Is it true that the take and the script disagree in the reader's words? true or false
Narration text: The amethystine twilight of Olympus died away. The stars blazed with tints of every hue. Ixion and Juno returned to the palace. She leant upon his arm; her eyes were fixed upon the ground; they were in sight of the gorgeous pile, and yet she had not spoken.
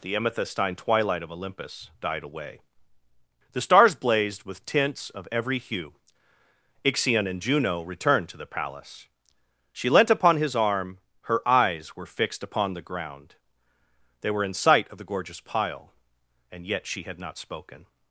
false